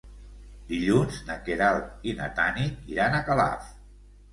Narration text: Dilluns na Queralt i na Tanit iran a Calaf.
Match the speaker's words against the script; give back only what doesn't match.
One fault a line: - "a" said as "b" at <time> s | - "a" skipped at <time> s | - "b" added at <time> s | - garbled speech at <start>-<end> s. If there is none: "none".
none